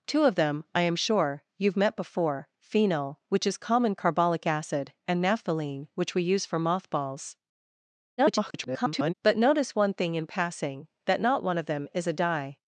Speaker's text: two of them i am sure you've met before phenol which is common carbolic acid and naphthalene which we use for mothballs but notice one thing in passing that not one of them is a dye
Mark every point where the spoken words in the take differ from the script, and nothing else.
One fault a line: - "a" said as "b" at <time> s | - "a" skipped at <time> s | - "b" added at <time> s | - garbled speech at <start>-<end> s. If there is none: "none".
- garbled speech at 8.2-9.1 s